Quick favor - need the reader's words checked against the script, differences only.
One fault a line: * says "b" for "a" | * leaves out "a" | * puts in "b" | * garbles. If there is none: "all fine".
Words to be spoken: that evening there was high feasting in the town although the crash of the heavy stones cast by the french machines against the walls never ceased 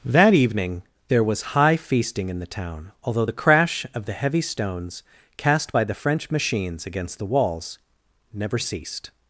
all fine